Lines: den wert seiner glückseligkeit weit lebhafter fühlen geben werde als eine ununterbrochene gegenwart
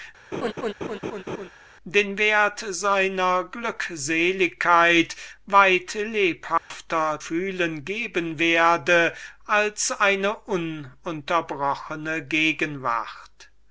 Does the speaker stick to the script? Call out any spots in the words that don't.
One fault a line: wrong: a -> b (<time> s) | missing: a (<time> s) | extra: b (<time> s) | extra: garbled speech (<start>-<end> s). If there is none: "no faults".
no faults